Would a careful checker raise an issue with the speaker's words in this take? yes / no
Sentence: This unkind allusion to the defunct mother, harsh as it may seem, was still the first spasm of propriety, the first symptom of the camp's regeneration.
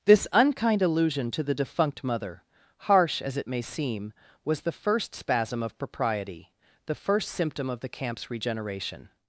yes